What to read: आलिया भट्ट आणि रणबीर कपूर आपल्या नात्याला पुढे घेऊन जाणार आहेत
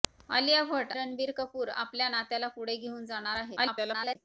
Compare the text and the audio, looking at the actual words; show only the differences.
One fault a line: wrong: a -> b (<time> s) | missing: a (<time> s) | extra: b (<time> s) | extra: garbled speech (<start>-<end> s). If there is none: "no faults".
missing: आणि (0.9 s)
extra: garbled speech (3.6-4.2 s)